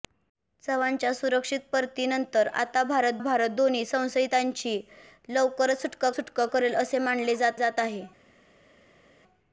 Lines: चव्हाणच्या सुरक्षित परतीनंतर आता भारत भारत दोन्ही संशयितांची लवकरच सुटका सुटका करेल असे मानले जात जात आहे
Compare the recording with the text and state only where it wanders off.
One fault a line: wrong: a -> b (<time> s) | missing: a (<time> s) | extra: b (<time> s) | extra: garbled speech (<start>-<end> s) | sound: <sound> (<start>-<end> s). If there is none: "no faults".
no faults